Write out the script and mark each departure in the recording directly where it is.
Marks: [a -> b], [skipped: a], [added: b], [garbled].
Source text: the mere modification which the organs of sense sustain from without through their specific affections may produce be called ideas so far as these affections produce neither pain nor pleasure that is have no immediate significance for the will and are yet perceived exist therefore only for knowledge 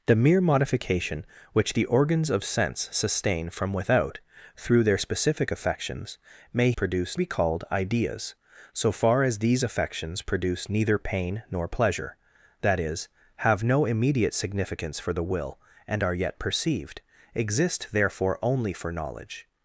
the mere modification which the organs of sense sustain from without through their specific affections may produce be called ideas so far as these affections produce neither pain nor pleasure that is have no immediate significance for the will and are yet perceived exist therefore only for knowledge